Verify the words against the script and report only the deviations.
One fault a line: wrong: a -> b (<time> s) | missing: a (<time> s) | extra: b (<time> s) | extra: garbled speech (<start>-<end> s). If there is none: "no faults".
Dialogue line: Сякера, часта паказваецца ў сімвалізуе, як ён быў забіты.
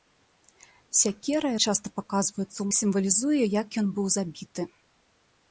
no faults